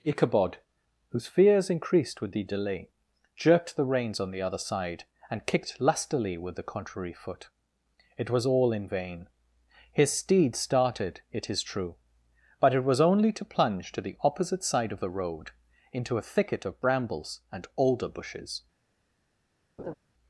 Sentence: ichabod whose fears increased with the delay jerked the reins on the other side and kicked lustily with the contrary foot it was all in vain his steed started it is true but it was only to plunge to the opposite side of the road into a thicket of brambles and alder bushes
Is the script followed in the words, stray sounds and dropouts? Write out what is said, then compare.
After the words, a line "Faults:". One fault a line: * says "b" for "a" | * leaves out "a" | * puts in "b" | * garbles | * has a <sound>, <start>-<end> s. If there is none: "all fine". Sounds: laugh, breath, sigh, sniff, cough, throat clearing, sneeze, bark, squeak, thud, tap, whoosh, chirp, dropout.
ichabod whose fears increased with the delay jerked the reins on the other side and kicked lustily with the contrary foot it was all in vain his steed started it is true but it was only to plunge to the opposite side of the road into a thicket of brambles and alder bushes
Faults:
* has a laugh, 19.8-19.9 s